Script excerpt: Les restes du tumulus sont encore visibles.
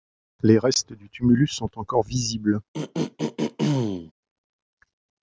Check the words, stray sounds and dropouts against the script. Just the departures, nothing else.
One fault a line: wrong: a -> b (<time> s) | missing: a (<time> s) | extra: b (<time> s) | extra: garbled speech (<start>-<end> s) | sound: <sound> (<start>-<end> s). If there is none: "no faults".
sound: throat clearing (2.7-4.1 s)